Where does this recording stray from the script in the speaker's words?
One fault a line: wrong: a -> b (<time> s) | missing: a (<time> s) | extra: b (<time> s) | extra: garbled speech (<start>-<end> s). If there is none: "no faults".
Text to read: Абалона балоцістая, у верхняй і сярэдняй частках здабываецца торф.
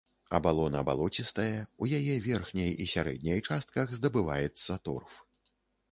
extra: яе (2.0 s)